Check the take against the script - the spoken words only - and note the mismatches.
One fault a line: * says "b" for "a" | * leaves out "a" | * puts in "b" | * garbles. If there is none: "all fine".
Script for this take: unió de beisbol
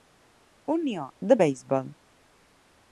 all fine